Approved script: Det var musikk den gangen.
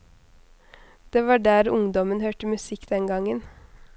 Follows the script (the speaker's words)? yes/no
no